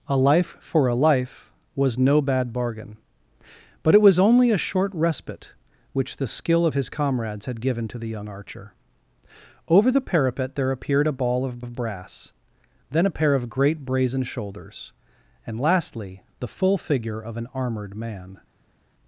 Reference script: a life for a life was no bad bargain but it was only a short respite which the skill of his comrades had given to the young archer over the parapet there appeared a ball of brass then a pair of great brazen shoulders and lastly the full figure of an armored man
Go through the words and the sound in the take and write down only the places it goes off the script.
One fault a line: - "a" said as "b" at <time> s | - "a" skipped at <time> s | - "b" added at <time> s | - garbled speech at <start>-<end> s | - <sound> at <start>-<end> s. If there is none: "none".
- "of" added at 11.6 s